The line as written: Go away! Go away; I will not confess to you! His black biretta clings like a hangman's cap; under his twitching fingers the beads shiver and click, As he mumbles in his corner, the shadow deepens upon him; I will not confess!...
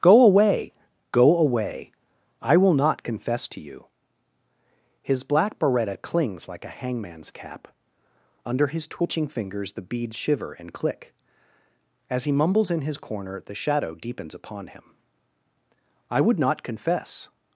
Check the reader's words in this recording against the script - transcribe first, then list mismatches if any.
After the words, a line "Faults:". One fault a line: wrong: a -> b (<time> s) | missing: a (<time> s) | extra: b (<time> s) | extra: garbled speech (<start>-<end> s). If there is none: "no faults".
Go away! Go away; I will not confess to you! His black biretta clings like a hangman's cap; under his twitching fingers the beads shiver and click, As he mumbles in his corner, the shadow deepens upon him; I would not confess!...
Faults:
wrong: will -> would (16.2 s)